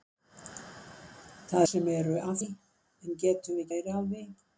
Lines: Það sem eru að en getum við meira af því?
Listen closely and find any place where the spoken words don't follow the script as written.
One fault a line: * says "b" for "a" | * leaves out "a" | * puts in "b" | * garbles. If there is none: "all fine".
all fine